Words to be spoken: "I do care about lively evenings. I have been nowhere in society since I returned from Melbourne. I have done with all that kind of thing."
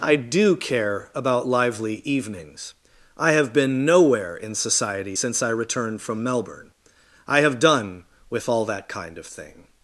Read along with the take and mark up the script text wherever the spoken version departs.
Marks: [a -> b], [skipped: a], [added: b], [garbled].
"I do care about lively evenings. I have been nowhere in society since I returned from Melbourne. I have done with all that kind of thing."